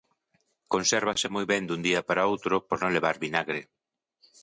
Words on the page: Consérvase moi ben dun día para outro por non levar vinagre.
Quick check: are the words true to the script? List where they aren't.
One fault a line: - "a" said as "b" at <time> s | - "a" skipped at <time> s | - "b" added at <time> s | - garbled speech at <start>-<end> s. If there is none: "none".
none